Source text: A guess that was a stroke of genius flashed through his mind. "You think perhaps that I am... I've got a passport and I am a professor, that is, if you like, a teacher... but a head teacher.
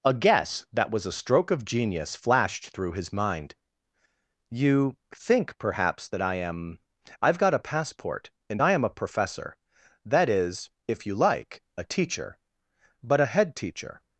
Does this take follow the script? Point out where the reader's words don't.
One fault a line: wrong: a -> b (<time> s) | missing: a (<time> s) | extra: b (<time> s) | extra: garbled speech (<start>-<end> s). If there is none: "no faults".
no faults